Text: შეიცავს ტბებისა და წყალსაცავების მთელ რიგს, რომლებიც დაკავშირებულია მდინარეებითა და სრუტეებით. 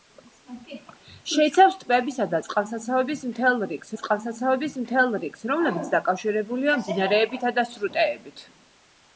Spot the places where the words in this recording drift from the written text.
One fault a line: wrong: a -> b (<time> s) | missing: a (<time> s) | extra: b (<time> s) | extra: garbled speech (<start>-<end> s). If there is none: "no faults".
extra: წყალსაცავების მთელ რიგს (4.0 s)